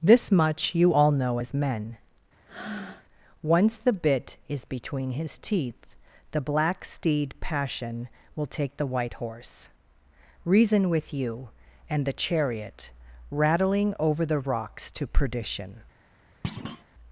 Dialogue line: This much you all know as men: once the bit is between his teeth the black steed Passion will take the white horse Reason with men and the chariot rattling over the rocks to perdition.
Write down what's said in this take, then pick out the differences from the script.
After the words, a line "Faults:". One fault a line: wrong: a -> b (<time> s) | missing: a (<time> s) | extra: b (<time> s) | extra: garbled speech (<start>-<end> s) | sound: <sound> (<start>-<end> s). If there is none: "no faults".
This much you all know as men: once the bit is between his teeth the black steed Passion will take the white horse Reason with you and the chariot rattling over the rocks to perdition.
Faults:
sound: breath (2.5-3.1 s)
wrong: men -> you (11.1 s)
sound: thud (16.4-16.8 s)